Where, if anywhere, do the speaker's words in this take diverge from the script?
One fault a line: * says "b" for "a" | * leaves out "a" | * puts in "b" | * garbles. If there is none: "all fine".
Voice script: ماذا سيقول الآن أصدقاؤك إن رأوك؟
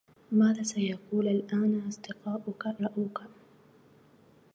* leaves out "إن"